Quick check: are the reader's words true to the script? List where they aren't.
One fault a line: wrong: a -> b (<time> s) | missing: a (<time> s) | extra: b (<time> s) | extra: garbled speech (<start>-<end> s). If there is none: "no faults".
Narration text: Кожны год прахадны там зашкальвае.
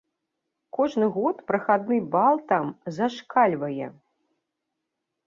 extra: бал (2.1 s)